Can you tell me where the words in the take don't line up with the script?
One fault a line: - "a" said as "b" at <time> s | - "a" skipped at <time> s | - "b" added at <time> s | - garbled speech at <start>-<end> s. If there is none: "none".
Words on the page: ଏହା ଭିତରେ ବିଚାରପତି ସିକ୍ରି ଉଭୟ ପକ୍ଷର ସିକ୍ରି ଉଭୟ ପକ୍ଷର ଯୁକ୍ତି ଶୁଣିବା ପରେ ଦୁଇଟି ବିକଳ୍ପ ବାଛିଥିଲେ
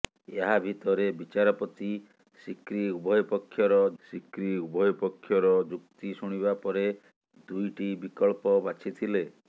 none